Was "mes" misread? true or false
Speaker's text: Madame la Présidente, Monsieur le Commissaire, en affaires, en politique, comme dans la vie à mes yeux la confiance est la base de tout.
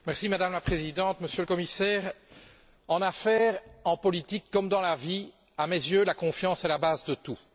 false